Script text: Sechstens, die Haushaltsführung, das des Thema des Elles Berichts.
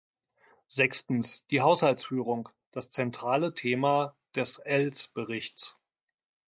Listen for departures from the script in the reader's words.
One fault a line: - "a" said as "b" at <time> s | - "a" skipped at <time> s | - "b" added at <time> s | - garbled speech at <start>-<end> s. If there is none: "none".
- "des" said as "zentrale" at 2.9 s